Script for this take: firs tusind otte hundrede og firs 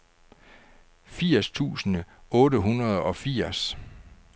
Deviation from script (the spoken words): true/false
false